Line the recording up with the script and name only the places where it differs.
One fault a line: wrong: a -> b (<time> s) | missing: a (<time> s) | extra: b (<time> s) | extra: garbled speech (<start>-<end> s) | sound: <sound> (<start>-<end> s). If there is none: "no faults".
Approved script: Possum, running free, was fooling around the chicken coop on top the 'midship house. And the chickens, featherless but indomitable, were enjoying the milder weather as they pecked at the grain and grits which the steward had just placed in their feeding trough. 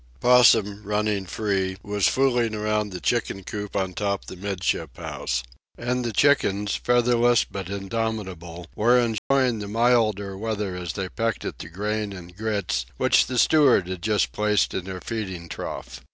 sound: dropout (9.2-9.3 s)